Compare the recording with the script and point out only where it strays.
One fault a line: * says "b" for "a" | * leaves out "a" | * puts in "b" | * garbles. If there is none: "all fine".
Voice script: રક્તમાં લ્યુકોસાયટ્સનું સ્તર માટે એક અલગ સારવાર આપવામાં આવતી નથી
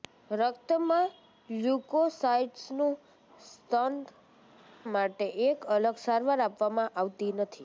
all fine